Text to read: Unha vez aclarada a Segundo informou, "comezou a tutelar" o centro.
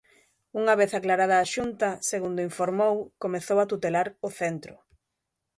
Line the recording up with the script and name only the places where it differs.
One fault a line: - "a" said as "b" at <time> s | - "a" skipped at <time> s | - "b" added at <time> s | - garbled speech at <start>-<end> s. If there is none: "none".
- "Xunta" added at 1.5 s